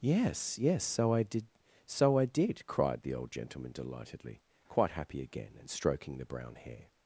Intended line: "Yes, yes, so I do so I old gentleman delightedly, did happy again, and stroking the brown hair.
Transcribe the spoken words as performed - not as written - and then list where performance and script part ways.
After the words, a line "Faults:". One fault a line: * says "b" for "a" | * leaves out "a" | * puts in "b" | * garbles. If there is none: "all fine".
"Yes, yes, so I did so I did," cried the old gentleman delightedly, quite happy again, and stroking the brown hair.
Faults:
* says "did" for "do"
* puts in "did cried the"
* says "quite" for "did"